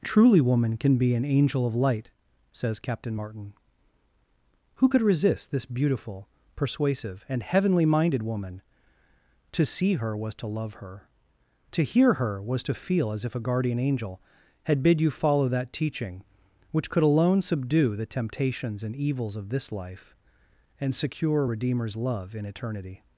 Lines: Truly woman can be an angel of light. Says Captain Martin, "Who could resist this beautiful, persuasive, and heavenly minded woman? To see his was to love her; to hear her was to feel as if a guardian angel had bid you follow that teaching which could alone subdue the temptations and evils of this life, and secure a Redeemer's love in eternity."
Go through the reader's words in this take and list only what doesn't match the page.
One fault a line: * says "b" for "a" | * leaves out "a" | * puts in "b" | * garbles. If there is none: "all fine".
* says "her" for "his"